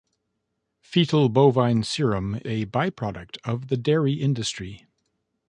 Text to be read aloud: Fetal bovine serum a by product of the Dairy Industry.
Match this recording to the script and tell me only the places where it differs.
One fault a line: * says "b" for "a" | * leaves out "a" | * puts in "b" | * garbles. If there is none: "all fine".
all fine